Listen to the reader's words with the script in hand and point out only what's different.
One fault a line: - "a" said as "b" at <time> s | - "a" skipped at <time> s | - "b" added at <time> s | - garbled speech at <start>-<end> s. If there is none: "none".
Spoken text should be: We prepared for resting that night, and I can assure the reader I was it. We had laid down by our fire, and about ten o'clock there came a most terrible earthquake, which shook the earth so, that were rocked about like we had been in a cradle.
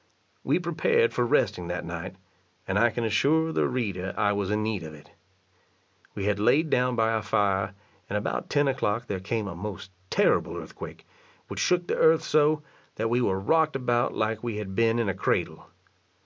- "in need of" added at 4.5 s
- "we" added at 13.1 s